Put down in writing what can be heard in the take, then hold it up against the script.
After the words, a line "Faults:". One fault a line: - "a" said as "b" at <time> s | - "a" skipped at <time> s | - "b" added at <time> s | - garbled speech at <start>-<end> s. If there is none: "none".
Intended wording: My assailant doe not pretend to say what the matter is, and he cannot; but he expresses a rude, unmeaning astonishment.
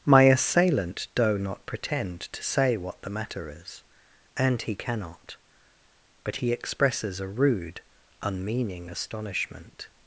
My assailant doe not pretend to say what the matter is, and he cannot; but he expresses a rude, unmeaning astonishment.
Faults:
none